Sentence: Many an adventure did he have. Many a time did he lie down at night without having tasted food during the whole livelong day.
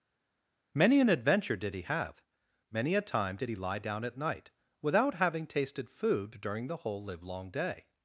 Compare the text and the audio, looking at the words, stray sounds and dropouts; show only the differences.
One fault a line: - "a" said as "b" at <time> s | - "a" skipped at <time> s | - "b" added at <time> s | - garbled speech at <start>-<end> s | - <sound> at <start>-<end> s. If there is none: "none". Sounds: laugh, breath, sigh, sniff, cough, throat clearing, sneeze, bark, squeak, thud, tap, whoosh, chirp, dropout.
none